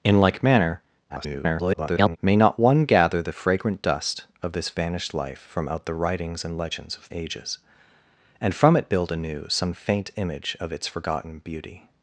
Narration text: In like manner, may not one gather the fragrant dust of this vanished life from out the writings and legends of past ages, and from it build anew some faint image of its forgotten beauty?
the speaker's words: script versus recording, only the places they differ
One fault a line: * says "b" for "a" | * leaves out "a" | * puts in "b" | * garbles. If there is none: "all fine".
* garbles
* leaves out "past"